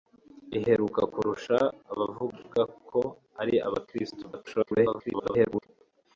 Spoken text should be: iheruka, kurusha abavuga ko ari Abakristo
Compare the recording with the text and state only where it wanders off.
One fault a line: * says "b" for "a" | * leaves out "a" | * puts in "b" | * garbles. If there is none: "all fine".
* garbles